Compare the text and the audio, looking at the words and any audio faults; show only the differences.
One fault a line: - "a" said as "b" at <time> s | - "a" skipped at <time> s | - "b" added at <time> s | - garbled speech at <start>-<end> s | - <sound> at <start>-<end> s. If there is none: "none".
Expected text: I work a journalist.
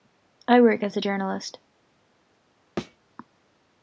- "as" added at 0.8 s
- thud at 2.8-3.0 s